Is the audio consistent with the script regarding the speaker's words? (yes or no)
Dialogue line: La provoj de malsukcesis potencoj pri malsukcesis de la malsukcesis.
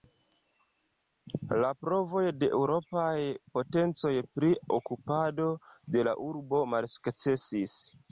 no